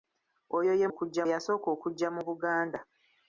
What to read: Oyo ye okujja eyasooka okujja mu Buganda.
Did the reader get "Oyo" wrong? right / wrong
right